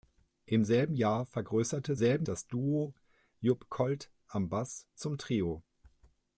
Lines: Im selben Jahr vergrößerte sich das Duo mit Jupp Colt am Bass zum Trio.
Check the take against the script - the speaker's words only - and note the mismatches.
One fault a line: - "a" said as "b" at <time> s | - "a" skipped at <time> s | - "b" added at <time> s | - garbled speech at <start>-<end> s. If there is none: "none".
- "sich" said as "selben" at 1.9 s
- "mit" skipped at 2.9 s